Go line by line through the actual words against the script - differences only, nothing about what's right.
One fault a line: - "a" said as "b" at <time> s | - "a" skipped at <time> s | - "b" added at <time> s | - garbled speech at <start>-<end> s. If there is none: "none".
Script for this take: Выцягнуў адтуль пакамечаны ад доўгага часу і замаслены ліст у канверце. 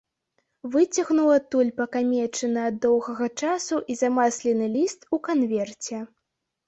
none